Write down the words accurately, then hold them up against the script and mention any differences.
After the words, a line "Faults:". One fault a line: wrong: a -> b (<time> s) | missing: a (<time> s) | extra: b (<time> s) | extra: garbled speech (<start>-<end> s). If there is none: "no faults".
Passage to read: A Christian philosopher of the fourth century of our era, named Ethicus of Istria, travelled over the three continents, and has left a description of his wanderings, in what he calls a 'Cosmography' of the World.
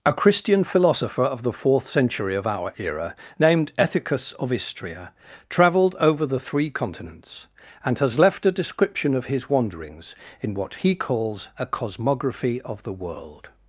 A Christian philosopher of the fourth century of our era, named Ethicus of Istria, travelled over the three continents, and has left a description of his wanderings, in what he calls a 'Cosmography' of the World.
Faults:
no faults